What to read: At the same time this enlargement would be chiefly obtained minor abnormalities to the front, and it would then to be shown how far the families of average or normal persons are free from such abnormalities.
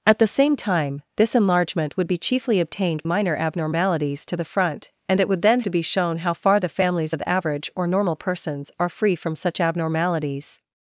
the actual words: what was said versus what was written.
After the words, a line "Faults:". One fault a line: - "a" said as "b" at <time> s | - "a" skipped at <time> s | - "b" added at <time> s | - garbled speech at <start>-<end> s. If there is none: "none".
At the same time this enlargement would be chiefly obtained minor abnormalities to the front, and it would then to be shown how far the families of average or normal persons are free from such abnormalities.
Faults:
none